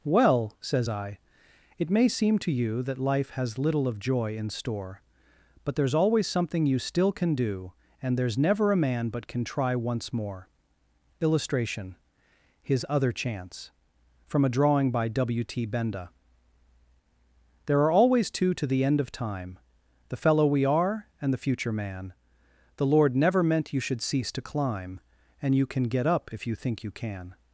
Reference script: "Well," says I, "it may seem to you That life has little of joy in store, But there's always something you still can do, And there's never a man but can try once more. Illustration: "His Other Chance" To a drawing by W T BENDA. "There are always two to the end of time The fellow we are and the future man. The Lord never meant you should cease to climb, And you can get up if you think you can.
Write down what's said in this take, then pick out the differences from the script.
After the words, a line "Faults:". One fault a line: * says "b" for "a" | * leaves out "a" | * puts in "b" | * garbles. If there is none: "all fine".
"Well," says I, "it may seem to you That life has little of joy in store, But there's always something you still can do, And there's never a man but can try once more. Illustration: "His Other Chance" From a drawing by W T BENDA. "There are always two to the end of time The fellow we are and the future man. The Lord never meant you should cease to climb, And you can get up if you think you can.
Faults:
* says "From" for "To"